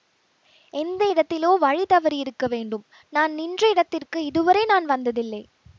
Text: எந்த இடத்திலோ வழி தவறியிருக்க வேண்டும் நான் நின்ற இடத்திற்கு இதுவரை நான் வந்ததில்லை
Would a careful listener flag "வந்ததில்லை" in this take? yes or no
no